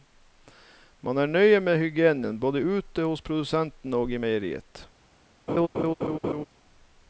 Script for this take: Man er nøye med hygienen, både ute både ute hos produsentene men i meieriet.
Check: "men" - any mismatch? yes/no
yes